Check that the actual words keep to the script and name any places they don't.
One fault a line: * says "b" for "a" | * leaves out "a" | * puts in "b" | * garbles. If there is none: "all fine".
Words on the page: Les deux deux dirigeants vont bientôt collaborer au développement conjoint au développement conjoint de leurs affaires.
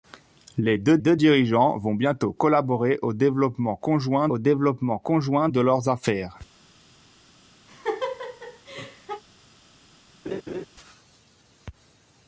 all fine